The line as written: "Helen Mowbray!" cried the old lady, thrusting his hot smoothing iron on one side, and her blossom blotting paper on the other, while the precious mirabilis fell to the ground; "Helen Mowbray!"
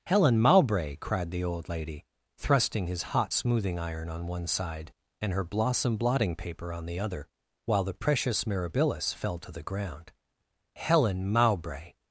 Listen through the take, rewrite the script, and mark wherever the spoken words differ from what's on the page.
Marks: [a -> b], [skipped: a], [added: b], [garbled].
"Helen Mowbray!" cried the old lady, thrusting his hot smoothing iron on one side, and her blossom blotting paper on the other, while the precious mirabilis fell to the ground; "Helen Mowbray!"